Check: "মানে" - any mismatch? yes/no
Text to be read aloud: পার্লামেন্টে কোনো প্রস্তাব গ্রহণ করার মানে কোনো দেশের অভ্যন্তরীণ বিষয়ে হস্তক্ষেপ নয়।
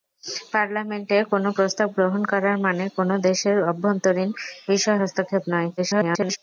no